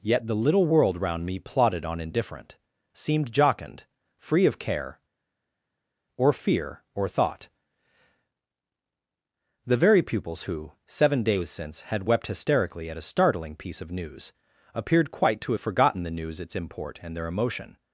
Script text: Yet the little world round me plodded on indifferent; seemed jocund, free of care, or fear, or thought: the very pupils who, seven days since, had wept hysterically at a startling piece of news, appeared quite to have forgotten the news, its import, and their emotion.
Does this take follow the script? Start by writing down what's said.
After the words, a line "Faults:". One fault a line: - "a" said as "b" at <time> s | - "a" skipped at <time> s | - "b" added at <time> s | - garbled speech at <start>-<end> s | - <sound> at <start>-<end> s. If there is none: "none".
Yet the little world round me plodded on indifferent; seemed jocund, free of care, or fear, or thought: the very pupils who, seven days since, had wept hysterically at a startling piece of news, appeared quite to have forgotten the news, its import, and their emotion.
Faults:
none